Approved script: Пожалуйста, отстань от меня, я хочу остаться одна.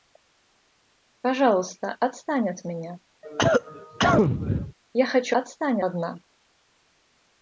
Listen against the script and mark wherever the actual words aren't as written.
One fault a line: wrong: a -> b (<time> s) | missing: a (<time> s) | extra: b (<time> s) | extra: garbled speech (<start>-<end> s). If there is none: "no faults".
wrong: остаться -> отстань (5.3 s)